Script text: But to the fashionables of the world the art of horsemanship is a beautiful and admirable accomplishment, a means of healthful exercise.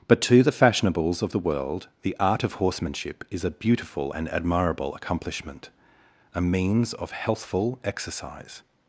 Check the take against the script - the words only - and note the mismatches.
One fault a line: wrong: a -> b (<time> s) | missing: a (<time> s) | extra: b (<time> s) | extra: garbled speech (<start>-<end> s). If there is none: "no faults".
no faults